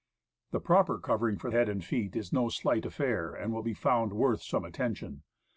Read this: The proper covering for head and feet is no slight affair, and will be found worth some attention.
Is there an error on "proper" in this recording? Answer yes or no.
no